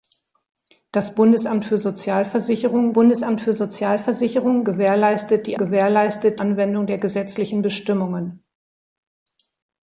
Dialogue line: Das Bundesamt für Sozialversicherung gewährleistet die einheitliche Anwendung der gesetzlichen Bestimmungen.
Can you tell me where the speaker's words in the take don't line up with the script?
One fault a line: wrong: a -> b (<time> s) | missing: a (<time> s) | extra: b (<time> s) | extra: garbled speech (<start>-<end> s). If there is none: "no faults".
extra: Bundesamt für Sozialversicherung (2.9 s)
wrong: einheitliche -> gewährleistet (5.6 s)